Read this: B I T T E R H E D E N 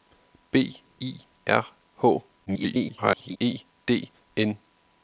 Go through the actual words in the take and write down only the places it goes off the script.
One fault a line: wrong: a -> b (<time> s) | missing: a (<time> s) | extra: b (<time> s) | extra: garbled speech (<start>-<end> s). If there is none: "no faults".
missing: T T E (1.1 s)
extra: garbled speech (2.5-3.4 s)
missing: E (4.1 s)